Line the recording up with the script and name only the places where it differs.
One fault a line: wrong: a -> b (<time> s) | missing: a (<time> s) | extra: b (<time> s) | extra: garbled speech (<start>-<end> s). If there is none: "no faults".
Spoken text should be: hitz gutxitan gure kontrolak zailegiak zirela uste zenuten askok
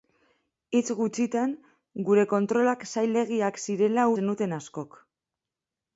missing: uste (4.1 s)